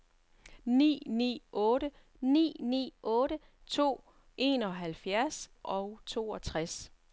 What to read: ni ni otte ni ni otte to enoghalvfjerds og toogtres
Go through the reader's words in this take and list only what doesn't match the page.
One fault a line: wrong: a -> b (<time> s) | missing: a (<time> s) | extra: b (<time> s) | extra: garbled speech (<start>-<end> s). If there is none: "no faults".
no faults